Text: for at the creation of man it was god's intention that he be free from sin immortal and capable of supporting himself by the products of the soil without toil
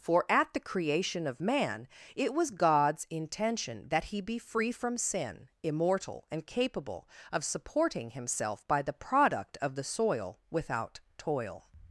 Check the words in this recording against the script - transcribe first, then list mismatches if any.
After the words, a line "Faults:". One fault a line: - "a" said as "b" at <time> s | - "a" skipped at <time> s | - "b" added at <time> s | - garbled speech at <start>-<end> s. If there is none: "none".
for at the creation of man it was god's intention that he be free from sin immortal and capable of supporting himself by the product of the soil without toil
Faults:
- "products" said as "product" at 8.9 s